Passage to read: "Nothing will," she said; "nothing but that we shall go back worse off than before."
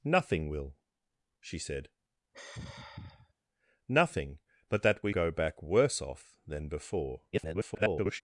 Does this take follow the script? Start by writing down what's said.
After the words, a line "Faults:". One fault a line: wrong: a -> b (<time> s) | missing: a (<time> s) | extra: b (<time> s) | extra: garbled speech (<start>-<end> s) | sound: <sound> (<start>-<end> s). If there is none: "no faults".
"Nothing will," she said; "nothing but that we go back worse off than before." [garbled]
Faults:
sound: sigh (2.3-3.3 s)
missing: shall (5.1 s)
extra: garbled speech (7.3-8.2 s)